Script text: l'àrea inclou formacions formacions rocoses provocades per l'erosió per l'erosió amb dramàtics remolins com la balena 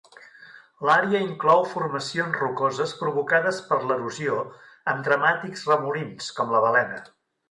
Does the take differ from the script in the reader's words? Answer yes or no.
yes